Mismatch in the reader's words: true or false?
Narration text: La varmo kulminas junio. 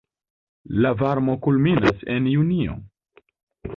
true